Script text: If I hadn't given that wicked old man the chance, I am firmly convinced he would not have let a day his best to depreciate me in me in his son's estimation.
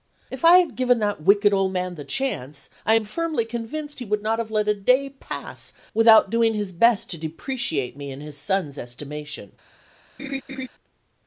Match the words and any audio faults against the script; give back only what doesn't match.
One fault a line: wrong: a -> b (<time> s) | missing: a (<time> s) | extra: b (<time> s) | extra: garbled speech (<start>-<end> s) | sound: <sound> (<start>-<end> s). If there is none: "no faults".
wrong: hadn't -> had (0.6 s)
extra: pass without doing (5.1 s)
missing: me in (8.2 s)
sound: laugh (10.2-10.7 s)